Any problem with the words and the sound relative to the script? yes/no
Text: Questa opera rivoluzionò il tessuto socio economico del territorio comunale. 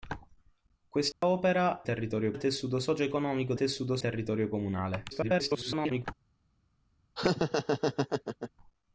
yes